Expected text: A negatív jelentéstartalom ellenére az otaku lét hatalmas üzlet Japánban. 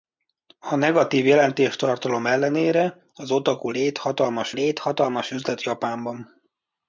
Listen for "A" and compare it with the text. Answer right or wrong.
right